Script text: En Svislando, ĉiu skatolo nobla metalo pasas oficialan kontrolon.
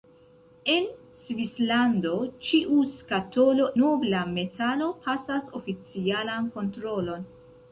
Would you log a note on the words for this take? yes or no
no